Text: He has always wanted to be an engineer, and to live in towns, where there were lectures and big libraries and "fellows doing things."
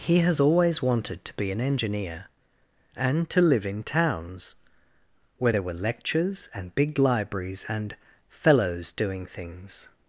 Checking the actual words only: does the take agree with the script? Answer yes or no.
yes